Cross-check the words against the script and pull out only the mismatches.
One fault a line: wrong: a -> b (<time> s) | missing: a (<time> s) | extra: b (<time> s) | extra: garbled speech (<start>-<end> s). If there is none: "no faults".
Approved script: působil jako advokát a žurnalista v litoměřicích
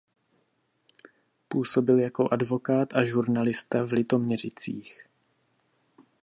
no faults